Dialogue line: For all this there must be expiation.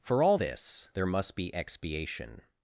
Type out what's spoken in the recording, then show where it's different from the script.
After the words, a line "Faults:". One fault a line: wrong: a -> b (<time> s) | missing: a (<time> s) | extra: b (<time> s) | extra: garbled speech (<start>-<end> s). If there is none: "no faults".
For all this there must be expiation.
Faults:
no faults